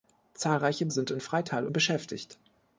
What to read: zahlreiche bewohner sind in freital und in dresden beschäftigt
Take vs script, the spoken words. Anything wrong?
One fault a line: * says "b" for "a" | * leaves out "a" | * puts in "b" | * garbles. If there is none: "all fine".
* leaves out "bewohner"
* leaves out "und in dresden"